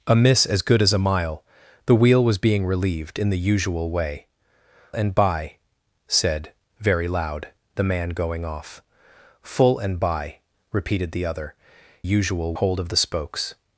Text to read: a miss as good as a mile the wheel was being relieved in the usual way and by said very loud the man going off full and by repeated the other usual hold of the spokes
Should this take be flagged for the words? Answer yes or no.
no